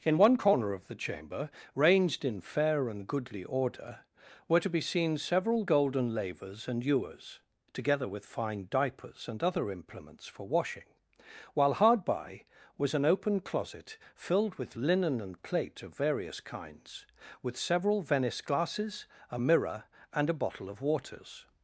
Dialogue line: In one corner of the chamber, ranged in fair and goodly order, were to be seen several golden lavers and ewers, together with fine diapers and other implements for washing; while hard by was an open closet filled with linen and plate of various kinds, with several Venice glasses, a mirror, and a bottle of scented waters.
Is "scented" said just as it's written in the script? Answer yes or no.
no